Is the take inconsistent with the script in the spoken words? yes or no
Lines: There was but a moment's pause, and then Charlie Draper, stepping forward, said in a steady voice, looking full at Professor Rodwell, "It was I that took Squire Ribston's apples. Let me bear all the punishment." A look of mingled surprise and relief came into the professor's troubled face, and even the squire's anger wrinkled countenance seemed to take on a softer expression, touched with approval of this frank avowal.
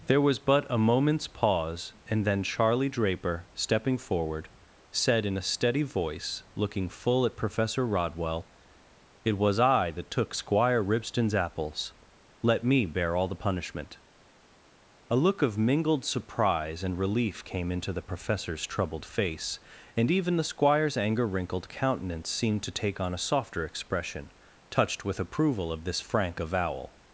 no